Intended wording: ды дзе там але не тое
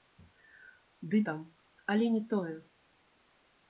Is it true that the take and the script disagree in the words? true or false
true